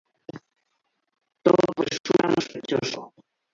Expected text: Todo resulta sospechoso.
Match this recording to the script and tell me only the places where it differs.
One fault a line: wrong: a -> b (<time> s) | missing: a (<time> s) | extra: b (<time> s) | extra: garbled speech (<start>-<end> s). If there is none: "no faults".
no faults